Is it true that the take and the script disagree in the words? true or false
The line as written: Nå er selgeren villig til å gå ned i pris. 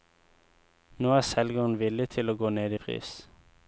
false